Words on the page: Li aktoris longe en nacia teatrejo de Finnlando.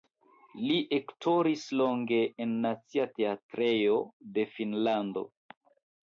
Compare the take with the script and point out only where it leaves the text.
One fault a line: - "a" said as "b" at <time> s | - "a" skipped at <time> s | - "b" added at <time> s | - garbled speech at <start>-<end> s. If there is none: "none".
none